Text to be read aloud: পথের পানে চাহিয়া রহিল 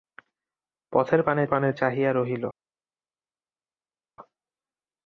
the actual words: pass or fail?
fail